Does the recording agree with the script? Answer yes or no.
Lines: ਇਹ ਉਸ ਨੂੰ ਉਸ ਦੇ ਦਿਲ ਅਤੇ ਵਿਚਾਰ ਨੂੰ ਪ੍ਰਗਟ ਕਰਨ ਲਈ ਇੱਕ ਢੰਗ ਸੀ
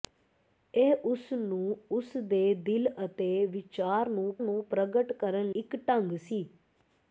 no